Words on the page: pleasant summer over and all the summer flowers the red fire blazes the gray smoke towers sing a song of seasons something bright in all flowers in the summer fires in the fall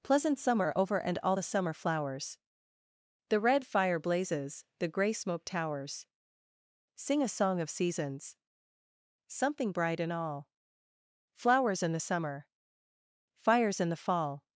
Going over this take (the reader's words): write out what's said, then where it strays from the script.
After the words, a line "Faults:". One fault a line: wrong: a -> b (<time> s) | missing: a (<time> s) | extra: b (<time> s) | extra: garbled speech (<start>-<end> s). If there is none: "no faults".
pleasant summer over and all the summer flowers the red fire blazes the gray smoke towers sing a song of seasons something bright in all flowers in the summer fires in the fall
Faults:
no faults